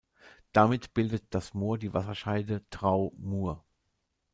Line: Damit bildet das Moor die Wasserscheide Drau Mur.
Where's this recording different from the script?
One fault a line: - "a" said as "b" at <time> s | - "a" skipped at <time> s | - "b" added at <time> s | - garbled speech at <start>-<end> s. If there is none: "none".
none